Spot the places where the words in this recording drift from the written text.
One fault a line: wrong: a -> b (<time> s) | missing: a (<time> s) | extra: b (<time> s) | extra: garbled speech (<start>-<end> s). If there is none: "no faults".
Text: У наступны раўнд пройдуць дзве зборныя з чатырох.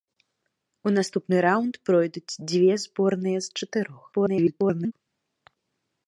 extra: garbled speech (4.1-4.9 s)